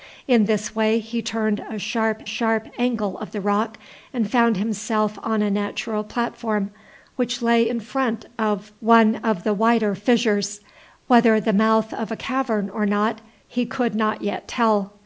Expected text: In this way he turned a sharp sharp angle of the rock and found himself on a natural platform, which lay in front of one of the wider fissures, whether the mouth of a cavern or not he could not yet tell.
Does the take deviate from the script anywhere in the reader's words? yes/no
no